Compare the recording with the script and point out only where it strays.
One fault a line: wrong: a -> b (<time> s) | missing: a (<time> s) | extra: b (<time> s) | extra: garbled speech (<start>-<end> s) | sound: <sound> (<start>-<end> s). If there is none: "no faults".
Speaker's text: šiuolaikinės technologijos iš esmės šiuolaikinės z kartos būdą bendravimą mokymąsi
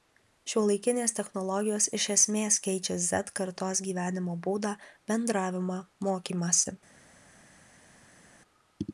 wrong: šiuolaikinės -> keičia (2.7 s)
extra: gyvenimo (3.9 s)